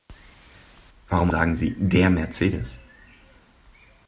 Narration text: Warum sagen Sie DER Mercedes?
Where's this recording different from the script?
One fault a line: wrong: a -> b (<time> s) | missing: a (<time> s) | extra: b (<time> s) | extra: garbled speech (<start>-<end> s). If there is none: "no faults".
no faults